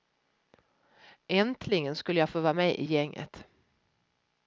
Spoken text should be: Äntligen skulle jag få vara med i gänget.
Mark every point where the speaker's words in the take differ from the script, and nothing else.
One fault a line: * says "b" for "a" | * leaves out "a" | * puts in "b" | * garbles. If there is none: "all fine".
all fine